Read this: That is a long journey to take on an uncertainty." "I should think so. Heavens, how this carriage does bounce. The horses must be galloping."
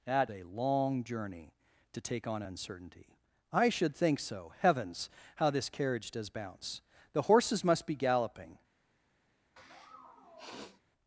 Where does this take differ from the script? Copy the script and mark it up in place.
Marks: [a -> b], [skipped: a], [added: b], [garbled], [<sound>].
That [skipped: is] a long journey to take on [skipped: an] uncertainty." "I should think so. Heavens, how this carriage does bounce. The horses must be galloping." [sniff]